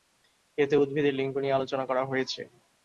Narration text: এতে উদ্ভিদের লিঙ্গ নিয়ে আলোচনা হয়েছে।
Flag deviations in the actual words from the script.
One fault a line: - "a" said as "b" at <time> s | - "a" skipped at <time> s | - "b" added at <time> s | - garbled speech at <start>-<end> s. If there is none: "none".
- "করা" added at 1.9 s